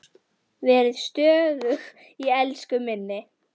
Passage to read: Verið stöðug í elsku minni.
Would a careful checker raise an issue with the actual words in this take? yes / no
no